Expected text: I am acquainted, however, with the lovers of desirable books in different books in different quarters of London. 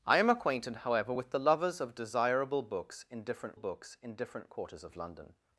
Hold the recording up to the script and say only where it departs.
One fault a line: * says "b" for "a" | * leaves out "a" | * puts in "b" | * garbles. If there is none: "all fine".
all fine